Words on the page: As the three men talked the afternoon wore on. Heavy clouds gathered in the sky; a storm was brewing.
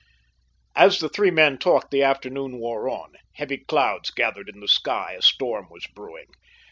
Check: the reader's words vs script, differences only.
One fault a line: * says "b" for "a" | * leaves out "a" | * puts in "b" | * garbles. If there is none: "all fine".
all fine